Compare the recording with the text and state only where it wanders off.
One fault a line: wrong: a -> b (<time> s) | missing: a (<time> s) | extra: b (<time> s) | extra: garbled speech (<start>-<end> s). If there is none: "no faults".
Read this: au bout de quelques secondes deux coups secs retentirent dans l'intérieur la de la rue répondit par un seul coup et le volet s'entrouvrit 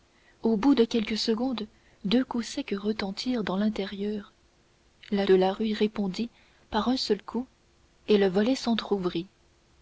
no faults